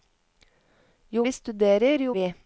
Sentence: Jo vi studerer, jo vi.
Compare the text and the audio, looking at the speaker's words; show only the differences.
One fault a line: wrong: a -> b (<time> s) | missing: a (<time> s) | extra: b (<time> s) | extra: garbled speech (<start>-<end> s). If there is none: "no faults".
no faults